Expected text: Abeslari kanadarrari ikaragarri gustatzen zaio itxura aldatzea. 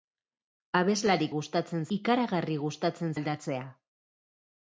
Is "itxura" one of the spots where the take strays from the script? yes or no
yes